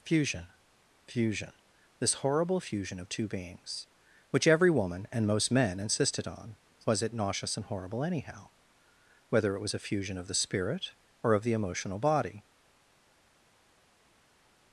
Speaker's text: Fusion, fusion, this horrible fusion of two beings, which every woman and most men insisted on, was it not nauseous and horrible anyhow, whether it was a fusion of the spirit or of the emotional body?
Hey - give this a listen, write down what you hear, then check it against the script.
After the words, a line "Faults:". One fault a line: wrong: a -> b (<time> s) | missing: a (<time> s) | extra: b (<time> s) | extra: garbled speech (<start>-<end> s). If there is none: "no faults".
Fusion, fusion, this horrible fusion of two beings, which every woman and most men insisted on, was it nauseous and horrible anyhow, whether it was a fusion of the spirit or of the emotional body?
Faults:
missing: not (7.1 s)